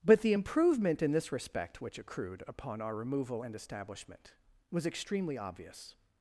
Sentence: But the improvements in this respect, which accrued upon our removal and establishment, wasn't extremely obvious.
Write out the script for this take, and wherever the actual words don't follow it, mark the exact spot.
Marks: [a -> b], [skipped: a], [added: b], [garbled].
But the [improvements -> improvement] in this respect, which accrued upon our removal and establishment, [wasn't -> was] extremely obvious.